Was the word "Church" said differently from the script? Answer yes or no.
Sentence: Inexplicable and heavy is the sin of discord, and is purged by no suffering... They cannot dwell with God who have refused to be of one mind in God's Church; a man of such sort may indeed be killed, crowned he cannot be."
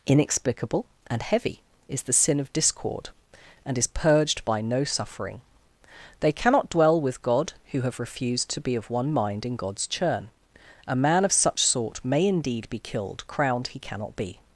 yes